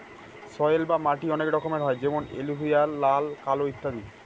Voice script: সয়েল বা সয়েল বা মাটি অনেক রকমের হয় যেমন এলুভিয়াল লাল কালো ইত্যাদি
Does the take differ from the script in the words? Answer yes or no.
yes